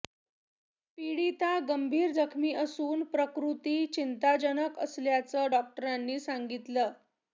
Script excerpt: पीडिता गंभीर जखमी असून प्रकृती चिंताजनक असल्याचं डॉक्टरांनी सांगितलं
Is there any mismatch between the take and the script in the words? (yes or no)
no